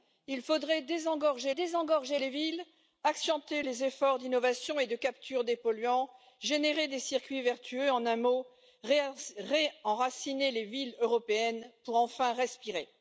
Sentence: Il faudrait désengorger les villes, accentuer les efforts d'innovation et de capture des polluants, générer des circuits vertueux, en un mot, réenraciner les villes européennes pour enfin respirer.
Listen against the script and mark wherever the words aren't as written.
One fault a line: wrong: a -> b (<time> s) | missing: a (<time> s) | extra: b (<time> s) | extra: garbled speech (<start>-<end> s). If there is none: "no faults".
extra: désengorger (1.5 s)